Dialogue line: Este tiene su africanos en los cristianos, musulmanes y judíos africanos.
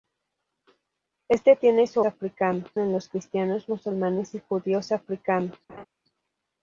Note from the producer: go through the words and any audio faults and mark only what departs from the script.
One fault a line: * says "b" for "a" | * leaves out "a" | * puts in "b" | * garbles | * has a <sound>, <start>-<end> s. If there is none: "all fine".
* has a laugh, 5.7-5.9 s